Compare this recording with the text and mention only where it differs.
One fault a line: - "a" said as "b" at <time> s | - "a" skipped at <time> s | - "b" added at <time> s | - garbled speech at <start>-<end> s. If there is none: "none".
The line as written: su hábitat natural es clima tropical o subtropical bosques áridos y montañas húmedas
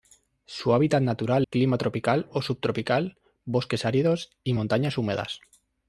- "es" skipped at 1.4 s